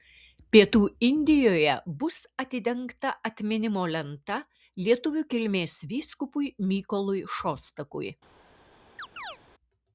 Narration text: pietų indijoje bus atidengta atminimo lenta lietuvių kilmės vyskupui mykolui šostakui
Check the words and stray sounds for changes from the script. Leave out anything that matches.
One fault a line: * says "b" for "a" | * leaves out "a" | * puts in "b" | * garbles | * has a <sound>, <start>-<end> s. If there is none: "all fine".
* has a chirp, 9.0-9.4 s